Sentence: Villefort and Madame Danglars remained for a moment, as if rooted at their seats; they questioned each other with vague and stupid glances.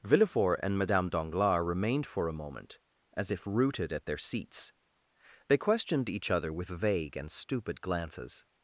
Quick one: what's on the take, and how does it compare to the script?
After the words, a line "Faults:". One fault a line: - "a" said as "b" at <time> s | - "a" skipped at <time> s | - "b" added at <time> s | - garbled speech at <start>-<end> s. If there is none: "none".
Villefort and Madame Danglars remained for a moment, as if rooted at their seats; they questioned each other with vague and stupid glances.
Faults:
none